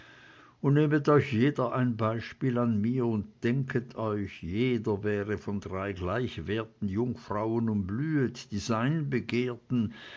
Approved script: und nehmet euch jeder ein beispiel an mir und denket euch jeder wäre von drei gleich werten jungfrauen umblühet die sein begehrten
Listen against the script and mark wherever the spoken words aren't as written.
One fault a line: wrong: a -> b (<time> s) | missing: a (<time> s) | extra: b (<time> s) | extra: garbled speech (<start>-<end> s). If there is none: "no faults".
no faults